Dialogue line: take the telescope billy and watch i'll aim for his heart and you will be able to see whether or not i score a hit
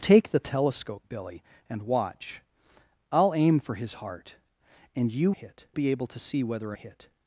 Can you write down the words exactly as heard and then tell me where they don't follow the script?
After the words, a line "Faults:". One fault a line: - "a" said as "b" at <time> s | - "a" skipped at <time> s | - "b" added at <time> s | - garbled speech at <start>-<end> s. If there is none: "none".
take the telescope billy and watch i'll aim for his heart and you hit be able to see whether or a hit
Faults:
- "will" said as "hit" at 5.3 s
- "not i score" skipped at 6.8 s